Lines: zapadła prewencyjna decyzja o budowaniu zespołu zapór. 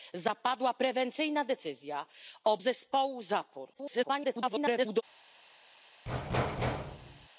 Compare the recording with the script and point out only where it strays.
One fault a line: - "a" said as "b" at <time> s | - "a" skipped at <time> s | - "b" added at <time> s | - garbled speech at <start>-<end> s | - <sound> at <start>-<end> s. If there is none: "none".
- "budowaniu" skipped at 2.6 s
- garbled speech at 3.7-5.0 s
- thud at 6.1-7.3 s